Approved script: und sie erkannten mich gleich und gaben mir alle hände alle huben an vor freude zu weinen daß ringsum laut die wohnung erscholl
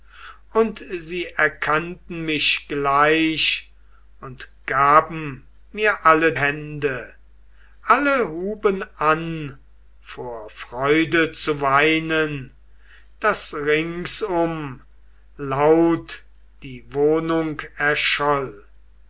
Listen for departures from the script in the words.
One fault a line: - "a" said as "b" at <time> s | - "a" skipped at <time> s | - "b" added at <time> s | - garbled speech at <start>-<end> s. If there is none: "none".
none